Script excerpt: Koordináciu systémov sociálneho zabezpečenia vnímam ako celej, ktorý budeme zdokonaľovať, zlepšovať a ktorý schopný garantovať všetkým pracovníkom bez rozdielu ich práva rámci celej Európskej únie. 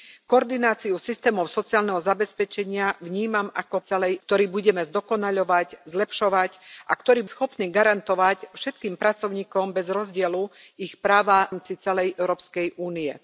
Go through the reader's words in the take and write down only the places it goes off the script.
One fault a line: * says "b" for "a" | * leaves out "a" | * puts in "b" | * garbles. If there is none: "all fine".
all fine